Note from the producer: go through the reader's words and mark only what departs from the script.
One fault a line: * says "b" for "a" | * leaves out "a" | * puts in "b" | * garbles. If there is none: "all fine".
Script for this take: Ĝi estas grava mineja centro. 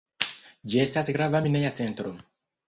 all fine